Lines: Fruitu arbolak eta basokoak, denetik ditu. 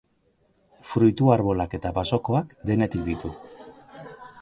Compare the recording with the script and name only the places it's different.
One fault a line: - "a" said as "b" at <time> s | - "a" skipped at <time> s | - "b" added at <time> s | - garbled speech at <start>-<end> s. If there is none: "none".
none